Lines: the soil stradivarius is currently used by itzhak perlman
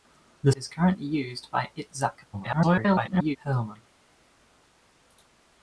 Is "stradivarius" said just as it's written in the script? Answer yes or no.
no